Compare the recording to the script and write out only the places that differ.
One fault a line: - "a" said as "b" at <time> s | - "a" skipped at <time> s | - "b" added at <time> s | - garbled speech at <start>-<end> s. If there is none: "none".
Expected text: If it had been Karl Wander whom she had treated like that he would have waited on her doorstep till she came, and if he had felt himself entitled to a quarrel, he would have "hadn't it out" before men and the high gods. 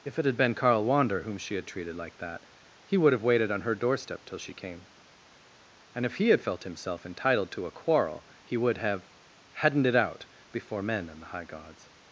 none